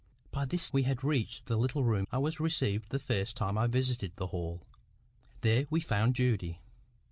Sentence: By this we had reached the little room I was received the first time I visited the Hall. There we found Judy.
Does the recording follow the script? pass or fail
pass